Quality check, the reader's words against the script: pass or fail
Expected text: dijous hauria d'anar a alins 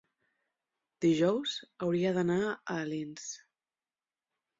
pass